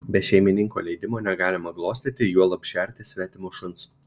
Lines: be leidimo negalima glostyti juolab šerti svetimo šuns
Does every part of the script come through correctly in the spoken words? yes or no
no